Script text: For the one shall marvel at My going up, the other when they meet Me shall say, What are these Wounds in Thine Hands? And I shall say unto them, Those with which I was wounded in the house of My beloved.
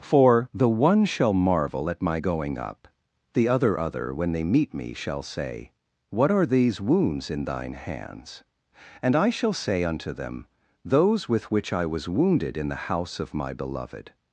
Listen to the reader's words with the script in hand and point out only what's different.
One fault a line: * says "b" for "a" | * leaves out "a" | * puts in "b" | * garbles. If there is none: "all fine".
* puts in "other"